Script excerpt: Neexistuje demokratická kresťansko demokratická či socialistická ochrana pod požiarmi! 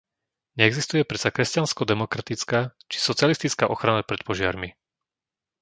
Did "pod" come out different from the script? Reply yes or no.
yes